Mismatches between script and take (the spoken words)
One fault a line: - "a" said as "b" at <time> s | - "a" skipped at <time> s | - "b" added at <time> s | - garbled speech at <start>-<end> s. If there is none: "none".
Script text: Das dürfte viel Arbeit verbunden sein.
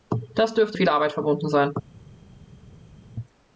none